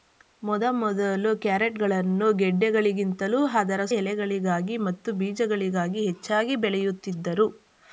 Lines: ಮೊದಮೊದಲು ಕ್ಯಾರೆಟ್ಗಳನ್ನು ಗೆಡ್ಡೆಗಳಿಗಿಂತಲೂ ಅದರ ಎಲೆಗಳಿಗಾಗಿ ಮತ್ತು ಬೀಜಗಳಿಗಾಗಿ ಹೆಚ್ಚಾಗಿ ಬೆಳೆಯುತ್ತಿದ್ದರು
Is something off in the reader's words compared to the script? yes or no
no